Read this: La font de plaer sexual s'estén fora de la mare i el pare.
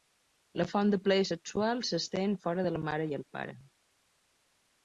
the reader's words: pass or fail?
pass